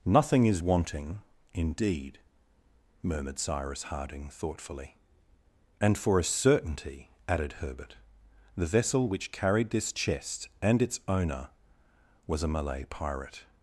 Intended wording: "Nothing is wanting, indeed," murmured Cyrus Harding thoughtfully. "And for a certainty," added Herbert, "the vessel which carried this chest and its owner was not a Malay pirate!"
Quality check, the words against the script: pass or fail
fail